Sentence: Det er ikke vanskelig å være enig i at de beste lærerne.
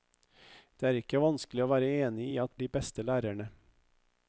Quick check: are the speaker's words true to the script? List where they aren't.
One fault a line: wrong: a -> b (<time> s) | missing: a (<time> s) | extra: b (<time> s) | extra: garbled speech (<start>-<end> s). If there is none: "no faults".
no faults